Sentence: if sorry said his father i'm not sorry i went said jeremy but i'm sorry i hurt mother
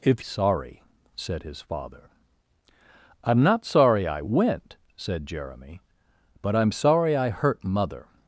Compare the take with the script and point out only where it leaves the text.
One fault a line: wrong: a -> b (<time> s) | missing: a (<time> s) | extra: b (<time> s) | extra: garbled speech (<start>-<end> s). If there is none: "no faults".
no faults